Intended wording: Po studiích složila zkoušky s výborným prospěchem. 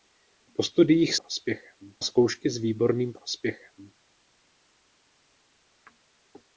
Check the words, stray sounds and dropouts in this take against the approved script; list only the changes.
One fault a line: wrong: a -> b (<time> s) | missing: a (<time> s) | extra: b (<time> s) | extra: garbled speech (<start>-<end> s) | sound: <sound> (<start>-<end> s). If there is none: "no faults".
wrong: složila -> prospěchem (1.2 s)